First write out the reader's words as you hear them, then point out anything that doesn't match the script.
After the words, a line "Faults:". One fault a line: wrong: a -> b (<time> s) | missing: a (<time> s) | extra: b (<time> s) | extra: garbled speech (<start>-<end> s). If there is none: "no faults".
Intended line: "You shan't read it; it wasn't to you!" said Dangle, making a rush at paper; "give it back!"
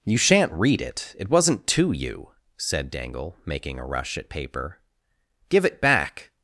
"You shan't read it; it wasn't to you!" said Dangle, making a rush at paper; "give it back!"
Faults:
no faults